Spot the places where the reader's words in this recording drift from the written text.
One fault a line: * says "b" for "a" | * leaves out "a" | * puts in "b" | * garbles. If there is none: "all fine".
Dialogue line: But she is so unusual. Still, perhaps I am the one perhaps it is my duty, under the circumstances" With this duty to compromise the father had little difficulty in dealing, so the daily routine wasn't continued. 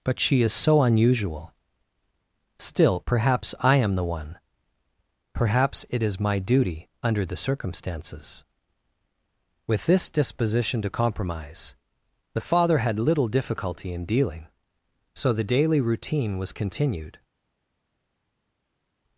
* says "disposition" for "duty"
* says "was" for "wasn't"